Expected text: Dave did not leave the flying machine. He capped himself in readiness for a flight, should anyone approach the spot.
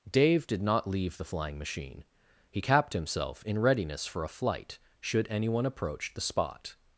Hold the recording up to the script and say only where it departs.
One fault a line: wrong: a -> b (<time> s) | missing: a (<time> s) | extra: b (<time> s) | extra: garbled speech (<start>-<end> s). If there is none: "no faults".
no faults